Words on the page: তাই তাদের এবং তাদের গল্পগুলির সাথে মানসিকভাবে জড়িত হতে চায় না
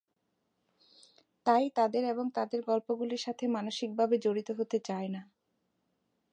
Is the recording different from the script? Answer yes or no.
no